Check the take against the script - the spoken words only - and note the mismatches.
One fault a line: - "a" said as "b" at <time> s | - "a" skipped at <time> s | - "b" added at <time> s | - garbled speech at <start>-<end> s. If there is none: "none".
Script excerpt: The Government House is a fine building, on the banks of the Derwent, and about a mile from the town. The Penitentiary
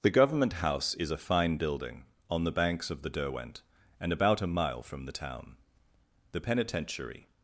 none